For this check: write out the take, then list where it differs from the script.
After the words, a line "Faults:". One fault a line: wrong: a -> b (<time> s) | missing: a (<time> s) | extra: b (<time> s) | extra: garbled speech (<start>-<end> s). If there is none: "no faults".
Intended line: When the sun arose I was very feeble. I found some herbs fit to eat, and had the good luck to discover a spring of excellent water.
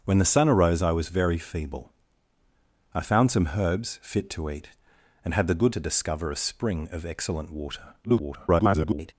When the sun arose I was very feeble. I found some herbs fit to eat, and had the good to discover a spring of excellent water. [garbled]
Faults:
missing: luck (5.8 s)
extra: garbled speech (8.0-9.1 s)